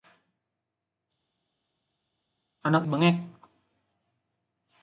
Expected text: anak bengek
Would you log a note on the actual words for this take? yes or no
no